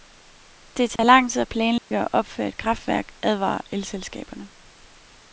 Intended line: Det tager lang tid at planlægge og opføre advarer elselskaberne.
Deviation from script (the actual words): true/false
true